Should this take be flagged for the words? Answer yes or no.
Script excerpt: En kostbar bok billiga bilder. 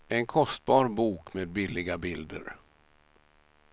yes